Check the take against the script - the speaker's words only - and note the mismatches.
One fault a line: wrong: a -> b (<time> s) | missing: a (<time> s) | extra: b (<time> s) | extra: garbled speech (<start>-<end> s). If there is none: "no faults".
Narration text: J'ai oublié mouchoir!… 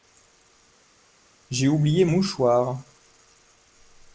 no faults